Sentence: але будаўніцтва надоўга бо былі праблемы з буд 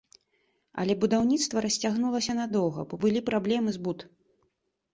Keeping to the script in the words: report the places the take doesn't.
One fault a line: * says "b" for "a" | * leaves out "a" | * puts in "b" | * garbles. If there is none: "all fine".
* puts in "расцягнулася"